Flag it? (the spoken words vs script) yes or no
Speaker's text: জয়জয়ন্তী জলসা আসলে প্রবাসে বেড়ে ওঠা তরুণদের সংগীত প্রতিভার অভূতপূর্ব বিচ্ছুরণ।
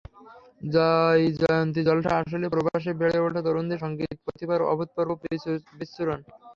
no